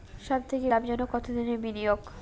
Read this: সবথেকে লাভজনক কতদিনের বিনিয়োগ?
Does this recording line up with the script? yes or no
yes